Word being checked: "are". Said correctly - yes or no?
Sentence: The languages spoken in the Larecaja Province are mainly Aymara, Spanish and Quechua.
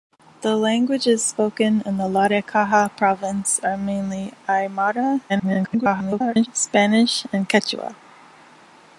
yes